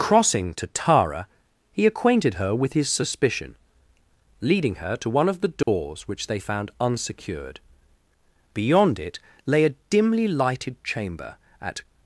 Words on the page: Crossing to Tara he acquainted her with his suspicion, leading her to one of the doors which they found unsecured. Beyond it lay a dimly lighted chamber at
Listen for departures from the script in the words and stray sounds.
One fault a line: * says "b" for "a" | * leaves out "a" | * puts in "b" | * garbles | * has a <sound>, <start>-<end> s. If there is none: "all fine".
* has a dropout, 5.6-5.7 s